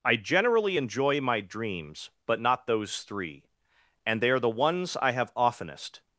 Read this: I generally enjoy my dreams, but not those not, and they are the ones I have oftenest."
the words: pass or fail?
fail